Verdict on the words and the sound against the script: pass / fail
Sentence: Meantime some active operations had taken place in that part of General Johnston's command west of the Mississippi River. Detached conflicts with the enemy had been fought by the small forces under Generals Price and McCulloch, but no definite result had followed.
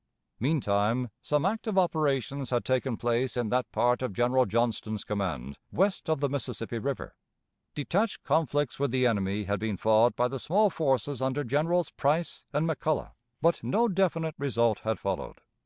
pass